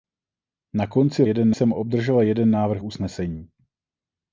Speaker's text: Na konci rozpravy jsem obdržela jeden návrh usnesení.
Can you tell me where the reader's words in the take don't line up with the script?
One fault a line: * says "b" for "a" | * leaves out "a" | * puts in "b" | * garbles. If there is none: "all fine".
* says "jeden" for "rozpravy"